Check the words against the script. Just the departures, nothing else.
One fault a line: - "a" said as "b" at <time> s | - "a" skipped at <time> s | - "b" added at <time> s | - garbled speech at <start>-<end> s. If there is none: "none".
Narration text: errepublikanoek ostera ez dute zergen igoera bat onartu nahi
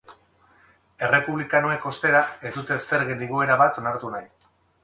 none